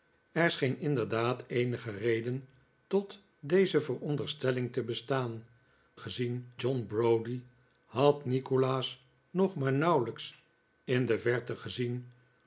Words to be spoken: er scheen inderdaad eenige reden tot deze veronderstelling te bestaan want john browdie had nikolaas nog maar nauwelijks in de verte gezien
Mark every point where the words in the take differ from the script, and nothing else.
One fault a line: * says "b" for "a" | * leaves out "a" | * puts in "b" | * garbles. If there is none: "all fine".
* says "gezien" for "want"